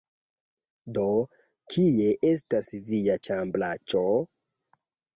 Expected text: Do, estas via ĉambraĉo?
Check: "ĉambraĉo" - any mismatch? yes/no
no